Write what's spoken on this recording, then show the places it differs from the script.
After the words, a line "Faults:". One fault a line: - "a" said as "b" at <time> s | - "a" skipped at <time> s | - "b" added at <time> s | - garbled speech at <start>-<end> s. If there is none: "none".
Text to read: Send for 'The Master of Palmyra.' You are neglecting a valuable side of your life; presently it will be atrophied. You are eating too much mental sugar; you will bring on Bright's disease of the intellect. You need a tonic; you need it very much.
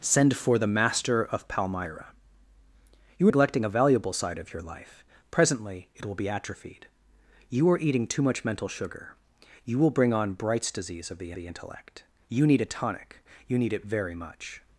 Send for 'The Master of Palmyra.' You neglecting a valuable side of your life; presently it will be atrophied. You are eating too much mental sugar; you will bring on Bright's disease of the the intellect. You need a tonic; you need it very much.
Faults:
- "are" skipped at 3.3 s
- "the" added at 11.3 s